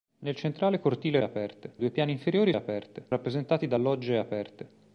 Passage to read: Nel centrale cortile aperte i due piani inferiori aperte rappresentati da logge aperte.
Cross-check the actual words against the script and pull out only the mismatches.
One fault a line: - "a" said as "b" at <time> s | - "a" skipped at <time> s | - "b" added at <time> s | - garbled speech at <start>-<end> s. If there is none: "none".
none